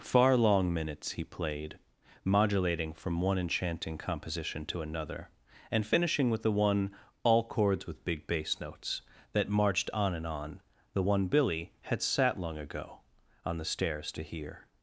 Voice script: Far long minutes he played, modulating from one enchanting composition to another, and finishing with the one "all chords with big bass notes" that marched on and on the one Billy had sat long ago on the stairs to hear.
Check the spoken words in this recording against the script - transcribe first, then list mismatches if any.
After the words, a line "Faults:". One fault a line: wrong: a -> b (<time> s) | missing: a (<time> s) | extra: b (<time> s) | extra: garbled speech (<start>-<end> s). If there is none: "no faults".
Far long minutes he played, modulating from one enchanting composition to another, and finishing with the one "all chords with big bass notes" that marched on and on the one Billy had sat long ago on the stairs to hear.
Faults:
no faults